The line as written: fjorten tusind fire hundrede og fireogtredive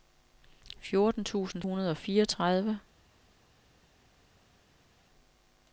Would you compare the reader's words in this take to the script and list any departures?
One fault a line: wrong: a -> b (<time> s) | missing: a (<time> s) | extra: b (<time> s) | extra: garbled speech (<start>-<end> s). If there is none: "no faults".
missing: fire (1.6 s)